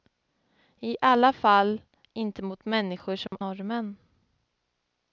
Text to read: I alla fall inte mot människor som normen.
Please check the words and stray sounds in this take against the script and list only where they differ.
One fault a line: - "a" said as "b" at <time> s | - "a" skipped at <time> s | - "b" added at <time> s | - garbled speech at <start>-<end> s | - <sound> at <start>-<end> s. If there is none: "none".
- dropout at 3.3-3.3 s